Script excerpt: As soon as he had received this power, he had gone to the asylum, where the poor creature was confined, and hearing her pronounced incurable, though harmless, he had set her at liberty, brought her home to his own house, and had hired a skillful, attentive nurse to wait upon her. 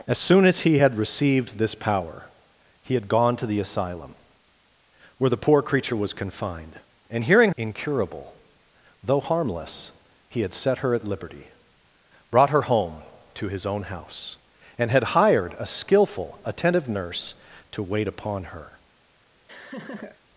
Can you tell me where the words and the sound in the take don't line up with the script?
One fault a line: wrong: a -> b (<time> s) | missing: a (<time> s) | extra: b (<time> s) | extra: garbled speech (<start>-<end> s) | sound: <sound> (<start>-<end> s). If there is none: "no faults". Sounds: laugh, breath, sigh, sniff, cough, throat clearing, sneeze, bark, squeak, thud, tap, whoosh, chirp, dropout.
missing: her pronounced (7.5 s)
sound: laugh (19.5-20.2 s)